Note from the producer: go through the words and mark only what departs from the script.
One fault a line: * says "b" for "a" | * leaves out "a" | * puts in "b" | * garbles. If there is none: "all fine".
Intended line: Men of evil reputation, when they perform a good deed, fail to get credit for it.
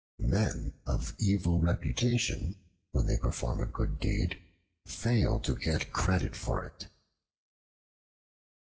all fine